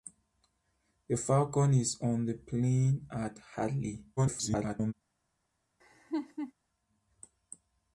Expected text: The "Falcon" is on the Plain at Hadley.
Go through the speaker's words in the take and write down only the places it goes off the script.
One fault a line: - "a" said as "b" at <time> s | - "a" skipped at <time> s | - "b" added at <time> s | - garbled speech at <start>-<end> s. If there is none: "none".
- garbled speech at 4.2-4.9 s